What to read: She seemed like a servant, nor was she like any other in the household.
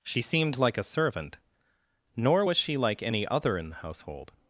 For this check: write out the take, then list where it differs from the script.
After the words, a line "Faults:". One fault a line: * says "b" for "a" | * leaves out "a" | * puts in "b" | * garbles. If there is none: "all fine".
She seemed like a servant, nor was she like any other in the household.
Faults:
all fine